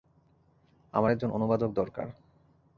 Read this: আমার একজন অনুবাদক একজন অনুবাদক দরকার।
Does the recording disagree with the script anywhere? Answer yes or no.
yes